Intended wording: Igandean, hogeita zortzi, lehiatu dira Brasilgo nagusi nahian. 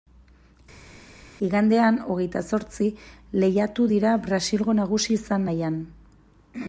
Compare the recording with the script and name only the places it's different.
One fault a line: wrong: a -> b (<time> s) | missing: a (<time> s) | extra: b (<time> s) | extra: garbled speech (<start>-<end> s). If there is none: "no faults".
extra: izan (5.2 s)